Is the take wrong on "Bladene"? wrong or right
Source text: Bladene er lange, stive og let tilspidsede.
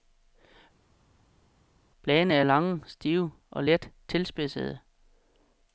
right